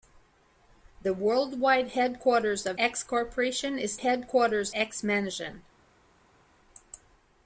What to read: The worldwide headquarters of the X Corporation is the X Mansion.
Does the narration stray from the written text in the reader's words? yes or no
yes